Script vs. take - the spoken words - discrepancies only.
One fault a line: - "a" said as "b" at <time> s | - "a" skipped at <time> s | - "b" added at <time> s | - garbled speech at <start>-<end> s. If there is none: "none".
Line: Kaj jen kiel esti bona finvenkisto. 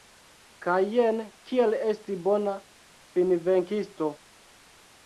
none